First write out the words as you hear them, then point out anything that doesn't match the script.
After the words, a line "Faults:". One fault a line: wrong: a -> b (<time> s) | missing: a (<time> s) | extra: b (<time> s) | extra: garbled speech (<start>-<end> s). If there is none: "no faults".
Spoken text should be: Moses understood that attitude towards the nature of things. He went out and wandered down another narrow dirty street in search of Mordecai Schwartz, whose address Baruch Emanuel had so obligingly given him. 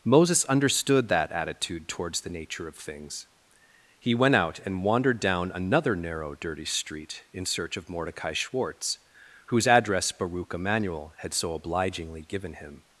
Moses understood that attitude towards the nature of things. He went out and wandered down another narrow dirty street in search of Mordecai Schwartz, whose address Baruch Emanuel had so obligingly given him.
Faults:
no faults